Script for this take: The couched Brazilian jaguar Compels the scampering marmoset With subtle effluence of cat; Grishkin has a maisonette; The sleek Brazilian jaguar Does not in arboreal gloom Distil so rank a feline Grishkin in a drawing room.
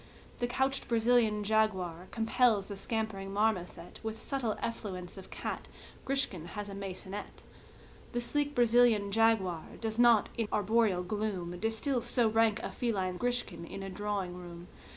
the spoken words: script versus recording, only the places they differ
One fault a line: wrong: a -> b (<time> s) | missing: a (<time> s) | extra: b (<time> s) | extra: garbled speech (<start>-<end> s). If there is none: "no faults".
no faults